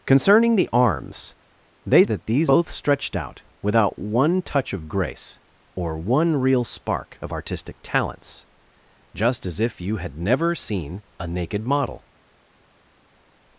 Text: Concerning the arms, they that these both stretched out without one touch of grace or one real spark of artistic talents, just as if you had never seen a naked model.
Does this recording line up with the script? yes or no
yes